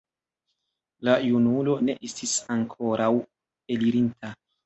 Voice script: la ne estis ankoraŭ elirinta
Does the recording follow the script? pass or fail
fail